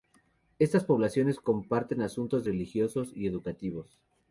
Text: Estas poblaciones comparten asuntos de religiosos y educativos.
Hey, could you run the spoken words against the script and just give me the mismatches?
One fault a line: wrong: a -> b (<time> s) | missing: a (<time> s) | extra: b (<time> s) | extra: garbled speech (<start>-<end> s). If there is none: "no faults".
no faults